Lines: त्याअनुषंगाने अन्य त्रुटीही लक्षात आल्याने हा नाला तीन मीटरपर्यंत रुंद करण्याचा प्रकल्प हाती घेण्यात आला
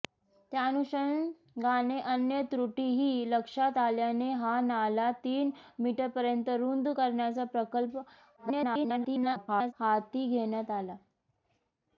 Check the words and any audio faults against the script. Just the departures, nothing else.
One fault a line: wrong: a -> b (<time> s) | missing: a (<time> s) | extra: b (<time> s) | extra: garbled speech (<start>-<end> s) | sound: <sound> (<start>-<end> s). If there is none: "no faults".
extra: garbled speech (8.4-9.7 s)